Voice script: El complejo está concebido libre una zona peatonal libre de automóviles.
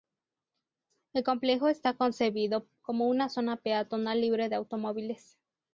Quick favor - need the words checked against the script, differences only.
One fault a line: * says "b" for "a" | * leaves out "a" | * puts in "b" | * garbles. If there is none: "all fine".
* says "como" for "libre"